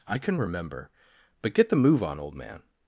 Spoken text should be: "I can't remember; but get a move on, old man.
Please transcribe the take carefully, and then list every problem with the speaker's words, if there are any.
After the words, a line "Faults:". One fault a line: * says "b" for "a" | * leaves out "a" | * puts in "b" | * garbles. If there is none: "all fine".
"I can remember; but get the move on, old man.
Faults:
* says "can" for "can't"
* says "the" for "a"